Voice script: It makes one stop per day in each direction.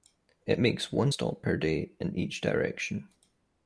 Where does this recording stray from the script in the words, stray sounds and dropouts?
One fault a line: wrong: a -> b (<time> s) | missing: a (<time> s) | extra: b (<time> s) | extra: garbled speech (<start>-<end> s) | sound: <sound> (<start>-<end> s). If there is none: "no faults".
no faults